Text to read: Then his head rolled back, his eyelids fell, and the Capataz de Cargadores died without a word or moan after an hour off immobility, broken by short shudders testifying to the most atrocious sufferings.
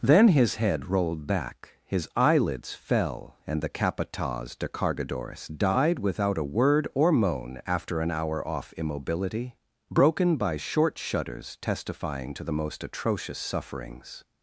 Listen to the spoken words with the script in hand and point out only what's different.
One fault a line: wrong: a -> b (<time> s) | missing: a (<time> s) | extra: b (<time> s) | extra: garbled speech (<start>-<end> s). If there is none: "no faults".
no faults